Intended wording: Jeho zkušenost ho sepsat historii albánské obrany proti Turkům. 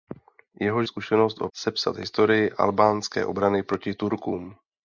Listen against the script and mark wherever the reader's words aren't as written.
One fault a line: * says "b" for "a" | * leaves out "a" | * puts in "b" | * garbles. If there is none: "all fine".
all fine